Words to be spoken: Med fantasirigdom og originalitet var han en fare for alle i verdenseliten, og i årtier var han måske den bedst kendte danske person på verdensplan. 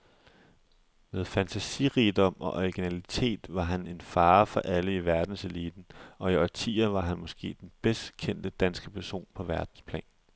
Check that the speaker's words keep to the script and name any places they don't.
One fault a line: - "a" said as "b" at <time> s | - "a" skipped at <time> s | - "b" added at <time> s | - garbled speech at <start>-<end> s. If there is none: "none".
none